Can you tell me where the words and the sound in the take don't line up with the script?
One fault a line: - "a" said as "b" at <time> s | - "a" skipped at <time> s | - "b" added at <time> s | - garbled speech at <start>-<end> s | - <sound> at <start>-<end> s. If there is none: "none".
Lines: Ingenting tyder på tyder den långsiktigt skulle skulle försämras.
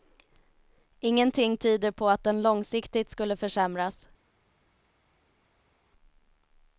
- "tyder" said as "att" at 2.1 s
- "skulle" skipped at 3.4 s